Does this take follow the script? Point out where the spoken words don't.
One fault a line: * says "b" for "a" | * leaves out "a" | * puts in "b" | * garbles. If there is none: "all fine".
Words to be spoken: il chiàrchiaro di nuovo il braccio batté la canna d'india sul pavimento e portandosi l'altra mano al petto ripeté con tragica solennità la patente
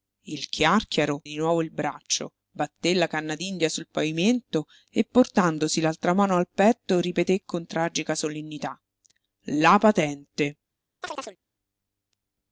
all fine